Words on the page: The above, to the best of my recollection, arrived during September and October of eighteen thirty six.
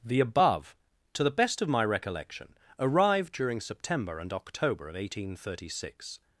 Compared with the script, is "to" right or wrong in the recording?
right